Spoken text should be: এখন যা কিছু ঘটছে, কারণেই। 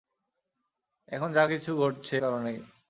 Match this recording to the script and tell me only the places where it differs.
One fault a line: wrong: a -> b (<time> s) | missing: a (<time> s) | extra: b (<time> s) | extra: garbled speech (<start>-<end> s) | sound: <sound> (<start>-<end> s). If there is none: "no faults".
no faults